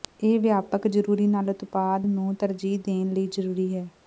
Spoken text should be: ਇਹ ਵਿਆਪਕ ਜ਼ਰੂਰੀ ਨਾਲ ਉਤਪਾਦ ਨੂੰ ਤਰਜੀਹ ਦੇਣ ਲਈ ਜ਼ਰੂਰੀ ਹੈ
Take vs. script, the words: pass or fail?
pass